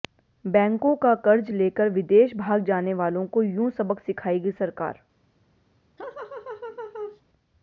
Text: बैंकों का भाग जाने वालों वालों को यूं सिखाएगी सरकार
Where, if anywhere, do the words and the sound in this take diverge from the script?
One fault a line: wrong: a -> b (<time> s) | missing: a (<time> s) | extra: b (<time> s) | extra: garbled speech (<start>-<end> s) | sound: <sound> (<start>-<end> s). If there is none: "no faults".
extra: कर्ज लेकर विदेश (1.2 s)
missing: वालों (3.3 s)
extra: सबक (3.7 s)
sound: laugh (6.0-7.2 s)